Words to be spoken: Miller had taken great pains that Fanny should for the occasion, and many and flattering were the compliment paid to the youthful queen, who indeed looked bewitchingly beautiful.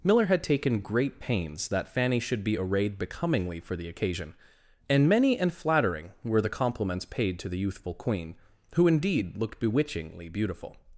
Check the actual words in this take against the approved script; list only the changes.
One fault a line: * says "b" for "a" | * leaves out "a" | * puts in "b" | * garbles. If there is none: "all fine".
* puts in "be arrayed becomingly"
* says "compliments" for "compliment"